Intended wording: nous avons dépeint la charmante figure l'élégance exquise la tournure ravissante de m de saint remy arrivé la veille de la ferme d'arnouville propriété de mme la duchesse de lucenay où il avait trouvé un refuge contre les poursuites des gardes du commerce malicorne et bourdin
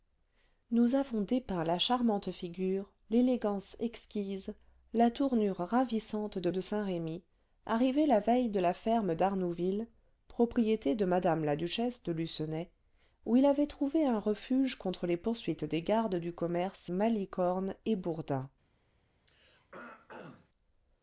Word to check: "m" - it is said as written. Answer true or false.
false